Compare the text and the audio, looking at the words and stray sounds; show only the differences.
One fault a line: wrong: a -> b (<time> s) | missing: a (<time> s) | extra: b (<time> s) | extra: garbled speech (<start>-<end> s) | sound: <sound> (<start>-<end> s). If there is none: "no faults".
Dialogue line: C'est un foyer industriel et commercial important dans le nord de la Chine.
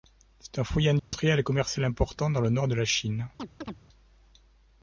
sound: dropout (1.0-1.1 s)
sound: chirp (3.4-3.8 s)